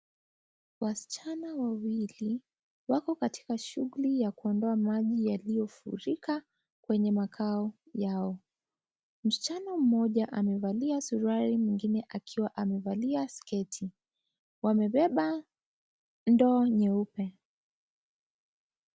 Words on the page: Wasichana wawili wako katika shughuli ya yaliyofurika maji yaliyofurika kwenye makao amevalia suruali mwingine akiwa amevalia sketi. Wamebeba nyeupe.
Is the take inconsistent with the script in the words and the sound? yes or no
yes